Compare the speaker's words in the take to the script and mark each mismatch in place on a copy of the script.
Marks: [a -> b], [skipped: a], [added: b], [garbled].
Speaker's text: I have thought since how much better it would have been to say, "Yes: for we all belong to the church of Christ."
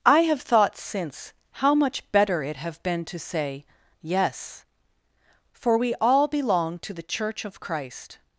I have thought since how much better it [skipped: would] have been to say, "Yes: for we all belong to the church of Christ."